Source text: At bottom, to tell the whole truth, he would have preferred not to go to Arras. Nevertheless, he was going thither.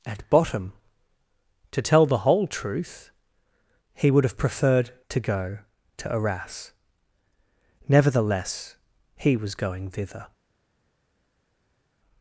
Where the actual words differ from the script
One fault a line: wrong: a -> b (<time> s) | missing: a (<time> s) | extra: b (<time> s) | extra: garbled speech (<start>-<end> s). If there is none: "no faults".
missing: not (4.9 s)